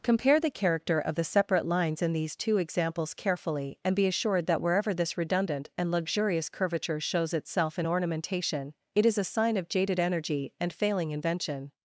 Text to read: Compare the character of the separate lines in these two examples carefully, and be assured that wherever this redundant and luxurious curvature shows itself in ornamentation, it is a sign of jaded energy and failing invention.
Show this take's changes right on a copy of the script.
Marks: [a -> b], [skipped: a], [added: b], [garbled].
Compare the character of the separate lines in these two examples carefully, and be assured that wherever this redundant and luxurious curvature shows itself in ornamentation, it is a sign of jaded energy and failing invention.